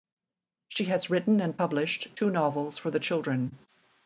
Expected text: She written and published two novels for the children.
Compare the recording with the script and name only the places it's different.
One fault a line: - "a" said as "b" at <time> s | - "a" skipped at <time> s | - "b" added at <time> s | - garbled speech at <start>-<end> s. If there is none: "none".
- "has" added at 0.8 s